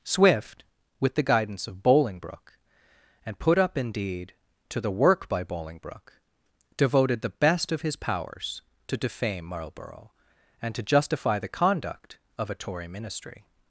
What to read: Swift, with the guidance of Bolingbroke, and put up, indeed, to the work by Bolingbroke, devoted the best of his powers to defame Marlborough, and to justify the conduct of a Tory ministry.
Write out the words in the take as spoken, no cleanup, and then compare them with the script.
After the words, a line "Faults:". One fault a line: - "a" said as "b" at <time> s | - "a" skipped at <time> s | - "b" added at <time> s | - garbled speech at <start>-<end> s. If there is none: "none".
Swift, with the guidance of Bolingbroke, and put up, indeed, to the work by Bolingbroke, devoted the best of his powers to defame Marlborough, and to justify the conduct of a Tory ministry.
Faults:
none